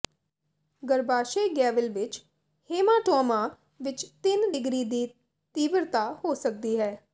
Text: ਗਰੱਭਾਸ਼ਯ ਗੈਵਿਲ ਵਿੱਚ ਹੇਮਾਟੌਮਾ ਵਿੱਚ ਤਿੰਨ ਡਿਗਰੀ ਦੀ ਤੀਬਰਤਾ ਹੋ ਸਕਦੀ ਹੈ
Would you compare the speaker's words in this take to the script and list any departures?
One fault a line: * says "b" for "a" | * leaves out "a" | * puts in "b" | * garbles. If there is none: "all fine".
all fine